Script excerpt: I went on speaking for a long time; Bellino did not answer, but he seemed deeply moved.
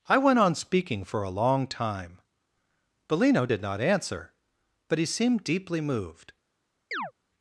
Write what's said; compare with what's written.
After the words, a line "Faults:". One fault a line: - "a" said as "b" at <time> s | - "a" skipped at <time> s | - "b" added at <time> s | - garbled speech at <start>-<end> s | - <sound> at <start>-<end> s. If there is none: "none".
I went on speaking for a long time; Bellino did not answer, but he seemed deeply moved.
Faults:
- chirp at 6.9-7.1 s